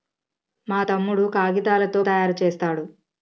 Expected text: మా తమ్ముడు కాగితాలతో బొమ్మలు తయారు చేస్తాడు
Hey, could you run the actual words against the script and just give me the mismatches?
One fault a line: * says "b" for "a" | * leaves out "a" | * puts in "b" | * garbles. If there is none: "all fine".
* leaves out "బొమ్మలు"